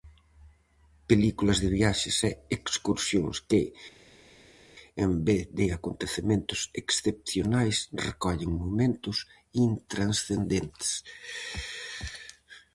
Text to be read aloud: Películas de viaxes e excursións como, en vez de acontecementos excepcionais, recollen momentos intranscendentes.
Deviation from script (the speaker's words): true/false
true